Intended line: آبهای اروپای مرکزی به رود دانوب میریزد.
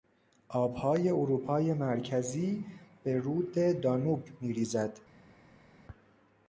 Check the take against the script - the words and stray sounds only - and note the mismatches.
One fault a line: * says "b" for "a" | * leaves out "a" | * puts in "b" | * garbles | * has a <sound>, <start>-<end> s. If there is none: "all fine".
all fine